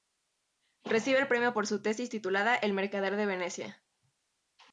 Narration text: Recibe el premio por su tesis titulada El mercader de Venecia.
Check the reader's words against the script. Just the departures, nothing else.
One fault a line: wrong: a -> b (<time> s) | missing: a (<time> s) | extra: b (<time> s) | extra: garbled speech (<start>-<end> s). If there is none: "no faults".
no faults